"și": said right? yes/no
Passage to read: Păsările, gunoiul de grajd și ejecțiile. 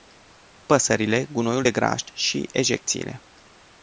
yes